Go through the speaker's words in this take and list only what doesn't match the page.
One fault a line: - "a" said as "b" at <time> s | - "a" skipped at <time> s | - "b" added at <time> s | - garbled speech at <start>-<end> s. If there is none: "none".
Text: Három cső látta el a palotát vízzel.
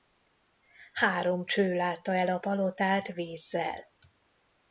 none